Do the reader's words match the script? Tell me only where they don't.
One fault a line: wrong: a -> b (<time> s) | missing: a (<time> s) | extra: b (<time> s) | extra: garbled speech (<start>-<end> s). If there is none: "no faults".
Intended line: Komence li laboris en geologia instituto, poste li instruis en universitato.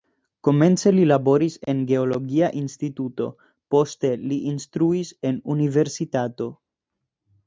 no faults